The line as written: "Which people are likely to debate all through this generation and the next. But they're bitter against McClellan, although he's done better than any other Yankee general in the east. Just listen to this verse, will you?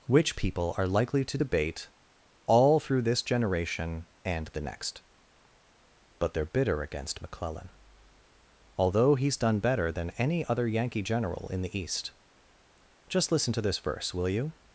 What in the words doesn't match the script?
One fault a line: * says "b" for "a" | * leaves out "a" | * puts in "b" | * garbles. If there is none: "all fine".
all fine